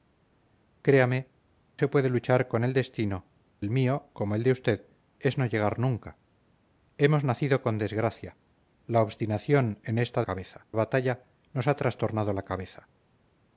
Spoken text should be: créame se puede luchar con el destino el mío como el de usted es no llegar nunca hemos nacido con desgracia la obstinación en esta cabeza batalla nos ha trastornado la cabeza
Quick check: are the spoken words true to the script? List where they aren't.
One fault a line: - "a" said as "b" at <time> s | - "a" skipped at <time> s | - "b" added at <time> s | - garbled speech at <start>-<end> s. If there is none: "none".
none